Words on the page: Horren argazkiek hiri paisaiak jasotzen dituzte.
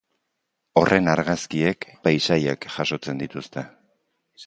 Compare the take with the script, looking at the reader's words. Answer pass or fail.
fail